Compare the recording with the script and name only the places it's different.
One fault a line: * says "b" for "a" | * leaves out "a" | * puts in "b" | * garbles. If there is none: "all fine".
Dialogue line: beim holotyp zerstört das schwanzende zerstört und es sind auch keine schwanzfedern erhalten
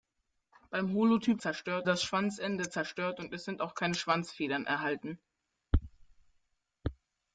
all fine